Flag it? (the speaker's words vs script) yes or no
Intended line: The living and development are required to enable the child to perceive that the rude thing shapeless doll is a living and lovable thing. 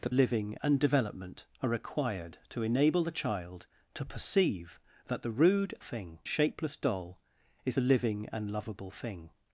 no